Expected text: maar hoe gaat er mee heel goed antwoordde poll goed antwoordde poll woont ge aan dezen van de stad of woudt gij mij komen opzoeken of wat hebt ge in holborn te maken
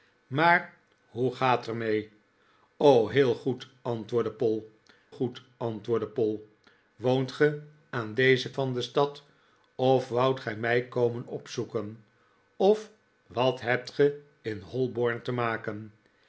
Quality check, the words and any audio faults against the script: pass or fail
pass